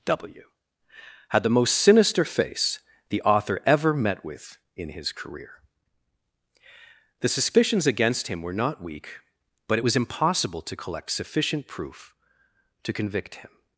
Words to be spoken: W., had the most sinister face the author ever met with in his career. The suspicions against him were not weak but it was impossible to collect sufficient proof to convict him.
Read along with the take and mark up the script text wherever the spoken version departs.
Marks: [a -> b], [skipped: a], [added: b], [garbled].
W., had the most sinister face the author ever met with in his career. The suspicions against him were not weak but it was impossible to collect sufficient proof to convict him.